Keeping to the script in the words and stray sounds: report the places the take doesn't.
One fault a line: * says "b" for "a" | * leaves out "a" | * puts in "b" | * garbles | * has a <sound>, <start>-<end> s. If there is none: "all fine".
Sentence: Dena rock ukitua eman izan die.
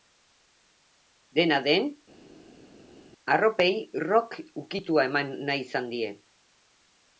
* puts in "den arropei"
* puts in "nahi"